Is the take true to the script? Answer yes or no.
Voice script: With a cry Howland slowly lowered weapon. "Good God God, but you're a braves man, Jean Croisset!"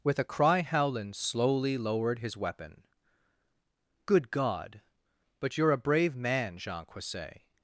no